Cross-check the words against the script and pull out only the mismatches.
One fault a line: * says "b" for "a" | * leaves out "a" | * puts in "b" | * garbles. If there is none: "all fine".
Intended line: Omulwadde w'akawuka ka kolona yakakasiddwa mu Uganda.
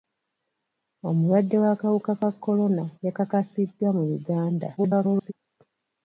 * garbles